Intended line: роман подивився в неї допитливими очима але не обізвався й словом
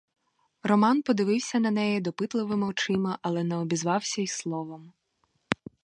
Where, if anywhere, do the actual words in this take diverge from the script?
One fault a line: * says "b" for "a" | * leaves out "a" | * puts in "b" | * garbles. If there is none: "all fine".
* says "на" for "в"